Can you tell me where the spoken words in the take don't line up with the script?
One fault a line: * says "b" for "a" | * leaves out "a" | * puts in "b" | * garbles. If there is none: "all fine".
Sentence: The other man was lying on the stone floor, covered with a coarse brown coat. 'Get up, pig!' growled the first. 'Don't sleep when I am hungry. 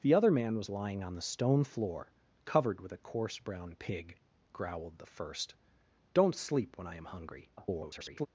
* leaves out "coat Get up"
* garbles